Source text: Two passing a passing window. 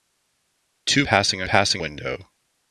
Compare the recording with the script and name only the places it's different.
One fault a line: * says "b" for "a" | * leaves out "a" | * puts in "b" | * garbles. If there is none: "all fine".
all fine